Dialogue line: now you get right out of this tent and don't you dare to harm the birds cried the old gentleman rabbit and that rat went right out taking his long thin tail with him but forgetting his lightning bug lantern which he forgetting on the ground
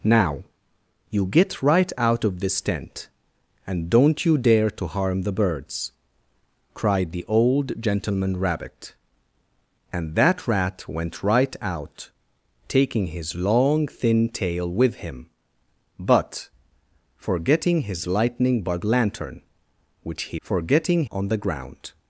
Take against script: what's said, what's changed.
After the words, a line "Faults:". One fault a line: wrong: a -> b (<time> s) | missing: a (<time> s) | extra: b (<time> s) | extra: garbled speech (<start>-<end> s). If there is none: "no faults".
now you get right out of this tent and don't you dare to harm the birds cried the old gentleman rabbit and that rat went right out taking his long thin tail with him but forgetting his lightning bug lantern which he forgetting on the ground
Faults:
no faults